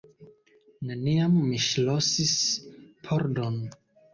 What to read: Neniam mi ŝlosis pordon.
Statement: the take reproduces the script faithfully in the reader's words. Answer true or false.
true